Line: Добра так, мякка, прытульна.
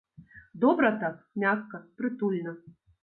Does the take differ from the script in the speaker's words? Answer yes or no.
no